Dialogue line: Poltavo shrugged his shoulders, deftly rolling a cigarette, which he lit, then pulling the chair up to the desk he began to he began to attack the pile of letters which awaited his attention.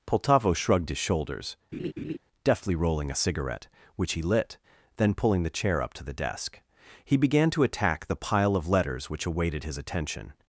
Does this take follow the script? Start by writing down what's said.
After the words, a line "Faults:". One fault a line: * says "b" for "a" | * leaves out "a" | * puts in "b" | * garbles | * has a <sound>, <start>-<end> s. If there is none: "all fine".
Poltavo shrugged his shoulders, deftly rolling a cigarette, which he lit, then pulling the chair up to the desk he began to attack the pile of letters which awaited his attention.
Faults:
* has a laugh, 1.7-2.2 s
* leaves out "he began to"